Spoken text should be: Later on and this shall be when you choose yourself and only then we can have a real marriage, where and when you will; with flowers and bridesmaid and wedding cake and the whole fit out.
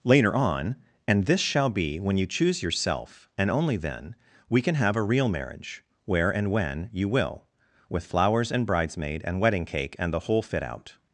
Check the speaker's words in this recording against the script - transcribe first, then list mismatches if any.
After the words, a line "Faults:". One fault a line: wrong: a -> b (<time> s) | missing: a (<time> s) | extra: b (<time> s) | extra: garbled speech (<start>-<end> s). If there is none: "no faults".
Later on and this shall be when you choose yourself and only then we can have a real marriage, where and when you will; with flowers and bridesmaid and wedding cake and the whole fit out.
Faults:
no faults